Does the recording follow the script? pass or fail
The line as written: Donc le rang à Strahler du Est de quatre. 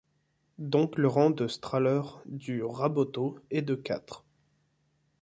fail